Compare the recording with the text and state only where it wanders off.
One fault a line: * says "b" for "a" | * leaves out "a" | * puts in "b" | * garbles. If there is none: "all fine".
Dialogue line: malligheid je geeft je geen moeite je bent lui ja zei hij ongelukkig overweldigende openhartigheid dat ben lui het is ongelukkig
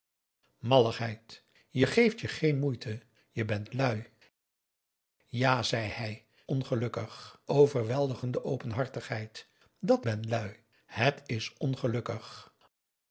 all fine